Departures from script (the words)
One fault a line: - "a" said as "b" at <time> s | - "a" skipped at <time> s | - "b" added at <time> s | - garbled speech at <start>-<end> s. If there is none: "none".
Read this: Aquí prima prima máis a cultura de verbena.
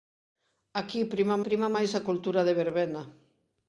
none